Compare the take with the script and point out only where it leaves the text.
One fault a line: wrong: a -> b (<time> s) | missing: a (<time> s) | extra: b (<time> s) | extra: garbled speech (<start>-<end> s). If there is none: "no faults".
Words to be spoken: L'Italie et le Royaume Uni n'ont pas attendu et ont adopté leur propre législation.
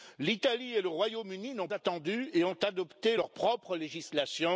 missing: pas (1.7 s)